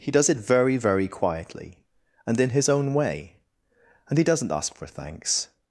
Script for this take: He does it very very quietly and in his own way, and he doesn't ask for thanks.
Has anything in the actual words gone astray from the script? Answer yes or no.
no